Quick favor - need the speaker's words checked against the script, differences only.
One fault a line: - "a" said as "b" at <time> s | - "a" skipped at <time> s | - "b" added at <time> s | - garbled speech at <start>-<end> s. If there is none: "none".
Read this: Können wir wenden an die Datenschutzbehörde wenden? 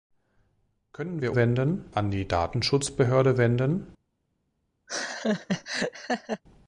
none